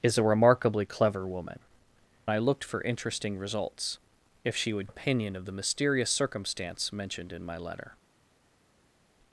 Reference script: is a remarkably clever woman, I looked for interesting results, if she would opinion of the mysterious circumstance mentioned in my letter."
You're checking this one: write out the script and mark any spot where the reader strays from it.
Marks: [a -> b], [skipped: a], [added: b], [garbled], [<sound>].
is a remarkably clever woman, I looked for interesting results, if she would opinion of the mysterious circumstance mentioned in my letter."